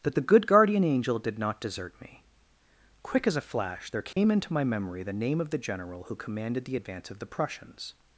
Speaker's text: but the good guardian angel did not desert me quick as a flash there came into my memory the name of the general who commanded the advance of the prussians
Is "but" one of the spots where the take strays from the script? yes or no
yes